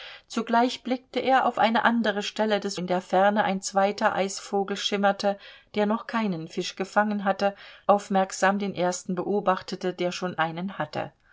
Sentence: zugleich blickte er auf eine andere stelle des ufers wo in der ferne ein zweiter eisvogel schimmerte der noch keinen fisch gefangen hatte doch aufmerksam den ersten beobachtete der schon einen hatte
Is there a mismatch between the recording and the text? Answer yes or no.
yes